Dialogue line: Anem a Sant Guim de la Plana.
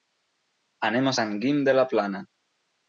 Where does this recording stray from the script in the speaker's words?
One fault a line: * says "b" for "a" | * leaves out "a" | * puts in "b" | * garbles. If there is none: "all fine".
all fine